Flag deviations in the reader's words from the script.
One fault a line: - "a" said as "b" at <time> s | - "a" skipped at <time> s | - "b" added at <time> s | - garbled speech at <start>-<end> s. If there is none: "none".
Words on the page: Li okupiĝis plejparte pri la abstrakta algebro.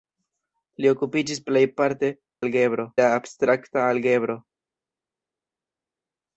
- "pri" said as "algebro" at 2.4 s